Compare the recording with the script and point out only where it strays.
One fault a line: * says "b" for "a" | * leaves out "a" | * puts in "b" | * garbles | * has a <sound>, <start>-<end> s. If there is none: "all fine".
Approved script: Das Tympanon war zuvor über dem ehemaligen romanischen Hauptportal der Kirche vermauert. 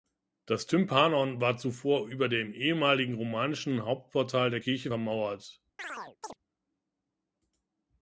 * has a chirp, 5.8-6.4 s